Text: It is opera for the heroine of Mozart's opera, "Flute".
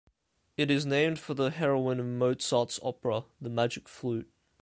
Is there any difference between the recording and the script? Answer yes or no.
yes